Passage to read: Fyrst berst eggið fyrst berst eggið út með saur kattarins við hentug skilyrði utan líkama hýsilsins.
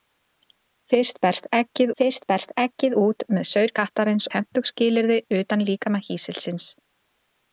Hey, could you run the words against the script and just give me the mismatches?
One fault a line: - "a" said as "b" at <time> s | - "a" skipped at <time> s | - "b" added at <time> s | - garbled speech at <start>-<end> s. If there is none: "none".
none